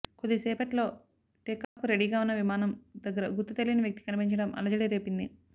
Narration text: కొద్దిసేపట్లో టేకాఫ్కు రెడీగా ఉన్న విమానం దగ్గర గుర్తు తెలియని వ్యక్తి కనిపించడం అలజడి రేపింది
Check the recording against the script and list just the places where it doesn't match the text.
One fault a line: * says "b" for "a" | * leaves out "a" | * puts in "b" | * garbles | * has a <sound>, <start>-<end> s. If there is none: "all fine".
* has a dropout, 1.6-1.8 s